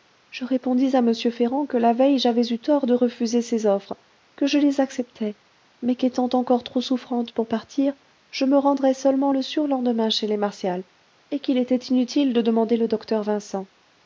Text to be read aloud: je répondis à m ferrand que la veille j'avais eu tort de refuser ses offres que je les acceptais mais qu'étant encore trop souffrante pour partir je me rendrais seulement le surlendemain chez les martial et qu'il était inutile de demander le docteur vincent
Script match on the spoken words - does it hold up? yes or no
yes